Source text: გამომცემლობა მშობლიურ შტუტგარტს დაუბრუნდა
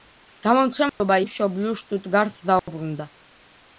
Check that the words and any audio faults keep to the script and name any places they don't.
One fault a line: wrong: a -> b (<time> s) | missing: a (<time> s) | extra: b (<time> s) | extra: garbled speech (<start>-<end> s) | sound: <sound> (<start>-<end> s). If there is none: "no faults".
sound: dropout (0.9-1.0 s)
sound: dropout (2.6-2.7 s)